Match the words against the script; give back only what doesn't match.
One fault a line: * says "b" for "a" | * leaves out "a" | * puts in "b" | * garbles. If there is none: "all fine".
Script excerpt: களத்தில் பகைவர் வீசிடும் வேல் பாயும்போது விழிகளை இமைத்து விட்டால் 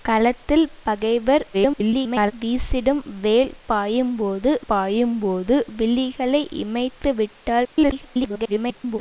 * garbles
* puts in "பாயும்போது"
* garbles